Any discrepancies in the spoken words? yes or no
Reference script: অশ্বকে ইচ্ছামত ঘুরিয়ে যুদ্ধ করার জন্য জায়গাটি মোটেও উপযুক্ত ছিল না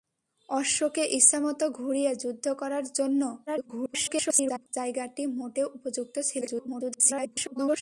yes